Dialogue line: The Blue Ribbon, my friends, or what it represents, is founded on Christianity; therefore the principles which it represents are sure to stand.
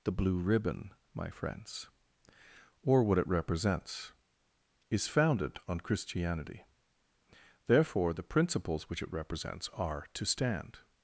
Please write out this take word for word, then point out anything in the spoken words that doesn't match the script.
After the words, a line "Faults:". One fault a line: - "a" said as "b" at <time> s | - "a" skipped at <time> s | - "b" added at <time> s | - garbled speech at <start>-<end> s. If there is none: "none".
The Blue Ribbon, my friends, or what it represents, is founded on Christianity; therefore the principles which it represents are to stand.
Faults:
- "sure" skipped at 10.1 s